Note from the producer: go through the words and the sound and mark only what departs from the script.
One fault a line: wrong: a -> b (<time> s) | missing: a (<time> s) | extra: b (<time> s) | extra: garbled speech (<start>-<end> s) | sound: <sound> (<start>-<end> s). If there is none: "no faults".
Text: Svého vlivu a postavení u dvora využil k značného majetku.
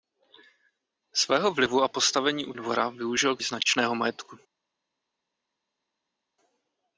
no faults